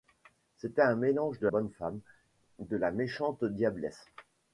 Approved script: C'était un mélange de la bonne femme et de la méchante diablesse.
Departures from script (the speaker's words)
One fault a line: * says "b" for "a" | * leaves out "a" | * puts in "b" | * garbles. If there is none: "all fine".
* leaves out "la"
* leaves out "et"